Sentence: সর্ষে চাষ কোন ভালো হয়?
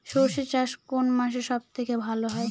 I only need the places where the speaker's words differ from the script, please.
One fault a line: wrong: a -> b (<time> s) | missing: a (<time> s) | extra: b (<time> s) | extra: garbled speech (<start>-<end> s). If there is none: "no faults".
extra: মাসে সব থেকে (1.1 s)